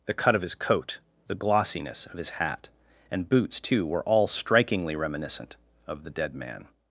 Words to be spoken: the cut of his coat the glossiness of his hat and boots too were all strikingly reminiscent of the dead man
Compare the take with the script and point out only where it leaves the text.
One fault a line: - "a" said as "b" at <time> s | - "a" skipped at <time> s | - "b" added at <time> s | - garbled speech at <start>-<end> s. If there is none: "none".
none